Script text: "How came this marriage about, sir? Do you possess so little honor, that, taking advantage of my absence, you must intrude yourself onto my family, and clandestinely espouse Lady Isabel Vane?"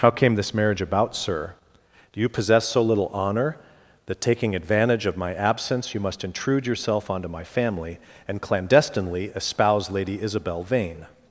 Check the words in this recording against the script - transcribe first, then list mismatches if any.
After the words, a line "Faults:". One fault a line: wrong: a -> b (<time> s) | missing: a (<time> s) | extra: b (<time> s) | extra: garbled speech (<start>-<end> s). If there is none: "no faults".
"How came this marriage about, sir? Do you possess so little honor, that, taking advantage of my absence, you must intrude yourself onto my family, and clandestinely espouse Lady Isabel Vane?"
Faults:
no faults